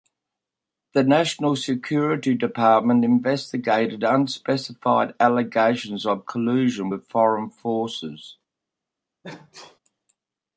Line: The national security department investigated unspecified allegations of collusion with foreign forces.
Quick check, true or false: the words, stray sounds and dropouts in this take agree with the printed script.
false